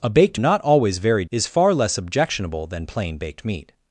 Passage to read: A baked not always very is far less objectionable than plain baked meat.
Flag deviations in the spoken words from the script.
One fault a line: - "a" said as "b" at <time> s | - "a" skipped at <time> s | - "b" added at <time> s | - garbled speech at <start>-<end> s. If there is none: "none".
none